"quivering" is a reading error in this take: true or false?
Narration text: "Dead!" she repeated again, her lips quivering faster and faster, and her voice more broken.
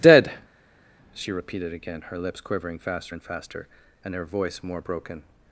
false